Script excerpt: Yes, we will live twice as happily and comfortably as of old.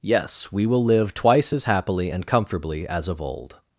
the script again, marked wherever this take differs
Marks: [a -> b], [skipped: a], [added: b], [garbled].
Yes, we will live twice as happily and comfortably as of old.